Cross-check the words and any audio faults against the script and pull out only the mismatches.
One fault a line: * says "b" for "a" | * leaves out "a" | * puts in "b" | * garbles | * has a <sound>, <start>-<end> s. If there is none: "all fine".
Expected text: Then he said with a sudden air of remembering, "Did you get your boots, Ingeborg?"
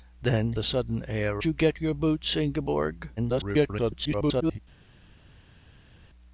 * leaves out "he said with"
* leaves out "of remembering Did"
* garbles